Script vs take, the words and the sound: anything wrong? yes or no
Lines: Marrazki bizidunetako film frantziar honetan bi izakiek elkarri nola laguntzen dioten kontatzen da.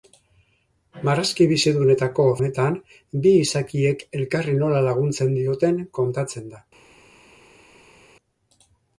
yes